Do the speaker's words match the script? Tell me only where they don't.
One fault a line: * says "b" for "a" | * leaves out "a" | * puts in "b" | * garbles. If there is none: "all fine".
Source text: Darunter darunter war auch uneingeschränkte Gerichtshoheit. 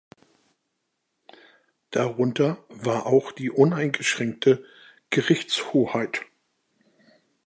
* leaves out "darunter"
* puts in "die"